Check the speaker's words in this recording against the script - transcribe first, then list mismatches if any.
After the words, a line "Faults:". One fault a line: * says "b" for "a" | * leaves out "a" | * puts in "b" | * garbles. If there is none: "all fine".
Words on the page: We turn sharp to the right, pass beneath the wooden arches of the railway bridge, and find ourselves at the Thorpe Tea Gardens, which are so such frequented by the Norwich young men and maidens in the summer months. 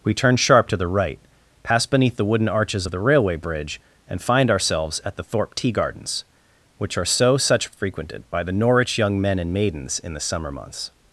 We turn sharp to the right, pass beneath the wooden arches of the railway bridge, and find ourselves at the Thorpe Tea Gardens, which are so such frequented by the Norwich young men and maidens in the summer months.
Faults:
all fine